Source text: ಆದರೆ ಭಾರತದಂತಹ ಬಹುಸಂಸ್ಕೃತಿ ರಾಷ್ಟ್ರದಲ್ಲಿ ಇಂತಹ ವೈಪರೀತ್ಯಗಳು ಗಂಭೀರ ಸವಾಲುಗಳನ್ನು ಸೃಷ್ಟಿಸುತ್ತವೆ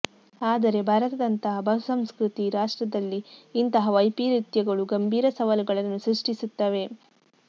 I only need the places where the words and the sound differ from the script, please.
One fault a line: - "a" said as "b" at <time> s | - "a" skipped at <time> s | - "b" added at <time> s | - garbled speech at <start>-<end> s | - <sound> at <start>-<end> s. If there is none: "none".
none